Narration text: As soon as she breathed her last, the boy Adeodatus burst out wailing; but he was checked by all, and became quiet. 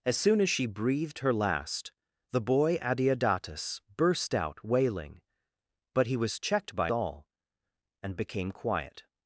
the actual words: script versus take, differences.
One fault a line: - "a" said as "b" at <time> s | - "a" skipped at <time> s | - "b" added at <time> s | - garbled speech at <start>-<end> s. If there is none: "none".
none